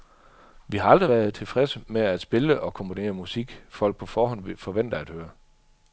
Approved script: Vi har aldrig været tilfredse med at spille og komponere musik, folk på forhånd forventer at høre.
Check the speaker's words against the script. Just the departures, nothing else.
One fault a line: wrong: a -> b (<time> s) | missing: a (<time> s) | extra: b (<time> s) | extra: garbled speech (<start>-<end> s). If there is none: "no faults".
no faults